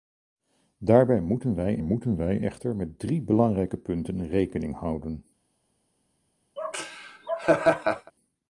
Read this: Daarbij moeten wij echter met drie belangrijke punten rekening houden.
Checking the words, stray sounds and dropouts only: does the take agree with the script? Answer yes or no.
no